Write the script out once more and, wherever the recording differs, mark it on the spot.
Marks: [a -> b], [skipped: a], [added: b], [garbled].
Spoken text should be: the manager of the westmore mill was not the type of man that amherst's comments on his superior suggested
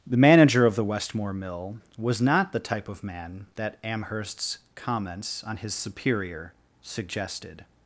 the manager of the westmore mill was not the type of man that amherst's comments on his superior suggested